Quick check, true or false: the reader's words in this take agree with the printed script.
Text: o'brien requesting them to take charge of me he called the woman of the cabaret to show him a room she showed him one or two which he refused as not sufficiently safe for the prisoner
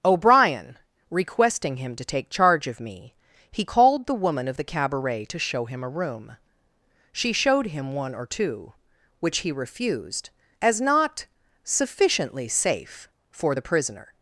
false